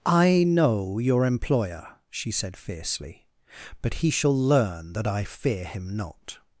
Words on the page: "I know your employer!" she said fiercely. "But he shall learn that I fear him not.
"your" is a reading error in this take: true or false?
false